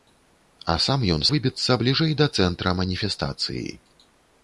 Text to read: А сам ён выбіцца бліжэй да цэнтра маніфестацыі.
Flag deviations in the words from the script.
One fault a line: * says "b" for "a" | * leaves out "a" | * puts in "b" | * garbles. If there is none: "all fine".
all fine